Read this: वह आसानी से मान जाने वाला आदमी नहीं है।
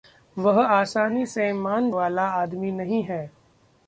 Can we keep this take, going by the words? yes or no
no